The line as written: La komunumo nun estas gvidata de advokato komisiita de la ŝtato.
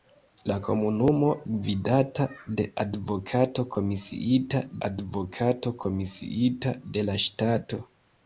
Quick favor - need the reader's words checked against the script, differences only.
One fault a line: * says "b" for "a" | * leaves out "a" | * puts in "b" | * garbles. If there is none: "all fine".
* says "gvidata de advokato komisiita" for "nun estas gvidata de"